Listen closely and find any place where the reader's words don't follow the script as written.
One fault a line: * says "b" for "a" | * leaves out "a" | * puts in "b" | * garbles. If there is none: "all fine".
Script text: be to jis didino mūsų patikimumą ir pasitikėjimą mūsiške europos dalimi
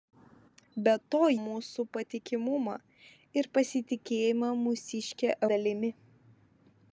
* leaves out "jis didino"
* leaves out "europos"